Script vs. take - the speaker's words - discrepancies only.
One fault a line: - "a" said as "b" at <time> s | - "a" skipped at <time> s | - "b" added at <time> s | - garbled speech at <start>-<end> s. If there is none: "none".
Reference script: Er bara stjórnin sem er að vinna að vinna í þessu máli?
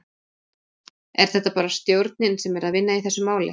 - "þetta" added at 1.3 s
- "að vinna" skipped at 3.0 s